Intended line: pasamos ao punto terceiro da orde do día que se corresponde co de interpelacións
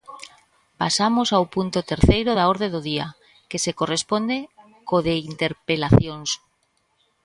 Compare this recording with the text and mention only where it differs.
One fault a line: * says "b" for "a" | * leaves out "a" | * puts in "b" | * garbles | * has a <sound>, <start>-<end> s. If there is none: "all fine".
all fine